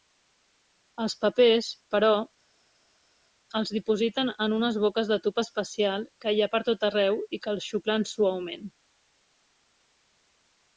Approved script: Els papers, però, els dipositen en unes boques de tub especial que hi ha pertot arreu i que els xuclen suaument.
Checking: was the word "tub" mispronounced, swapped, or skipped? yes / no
no